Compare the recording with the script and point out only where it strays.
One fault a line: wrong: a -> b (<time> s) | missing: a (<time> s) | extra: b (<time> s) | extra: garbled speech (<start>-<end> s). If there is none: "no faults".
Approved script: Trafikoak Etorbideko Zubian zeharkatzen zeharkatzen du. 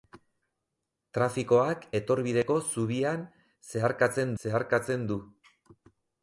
no faults